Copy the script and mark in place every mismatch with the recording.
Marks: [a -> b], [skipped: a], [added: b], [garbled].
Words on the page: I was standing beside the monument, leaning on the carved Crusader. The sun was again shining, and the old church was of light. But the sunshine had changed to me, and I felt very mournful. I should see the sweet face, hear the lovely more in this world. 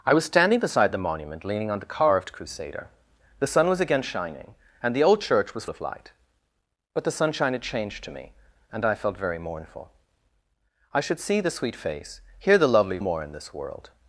I was standing beside the monument, leaning on the carved Crusader. The sun was again shining, and the old church was of light. But the sunshine had changed to me, and I felt very mournful. I should see the sweet face, hear the lovely more in this world.